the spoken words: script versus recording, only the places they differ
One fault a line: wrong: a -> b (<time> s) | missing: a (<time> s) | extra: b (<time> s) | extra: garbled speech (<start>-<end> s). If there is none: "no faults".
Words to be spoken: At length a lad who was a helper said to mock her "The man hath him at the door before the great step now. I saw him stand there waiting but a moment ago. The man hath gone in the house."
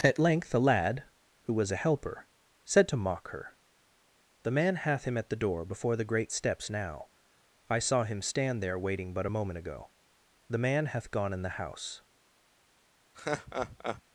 wrong: step -> steps (6.3 s)